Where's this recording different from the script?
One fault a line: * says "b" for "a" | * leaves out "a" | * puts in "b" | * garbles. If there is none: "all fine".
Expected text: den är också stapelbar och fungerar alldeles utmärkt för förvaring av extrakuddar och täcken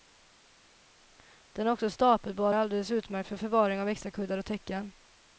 * leaves out "och fungerar"